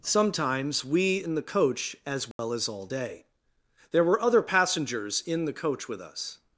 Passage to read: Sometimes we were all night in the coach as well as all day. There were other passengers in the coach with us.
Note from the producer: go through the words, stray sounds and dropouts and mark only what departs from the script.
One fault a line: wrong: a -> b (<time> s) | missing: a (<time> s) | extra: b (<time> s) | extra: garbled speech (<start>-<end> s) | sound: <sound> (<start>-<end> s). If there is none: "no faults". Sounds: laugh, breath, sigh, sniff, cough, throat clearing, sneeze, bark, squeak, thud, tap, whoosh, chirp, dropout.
missing: were all night (1.2 s)
sound: dropout (2.3-2.4 s)